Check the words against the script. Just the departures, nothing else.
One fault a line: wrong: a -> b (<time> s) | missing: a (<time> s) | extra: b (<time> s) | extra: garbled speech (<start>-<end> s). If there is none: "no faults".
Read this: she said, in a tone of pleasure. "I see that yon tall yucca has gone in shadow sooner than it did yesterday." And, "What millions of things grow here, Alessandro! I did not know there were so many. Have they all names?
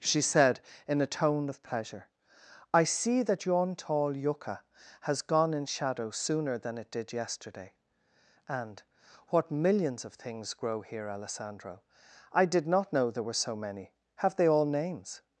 no faults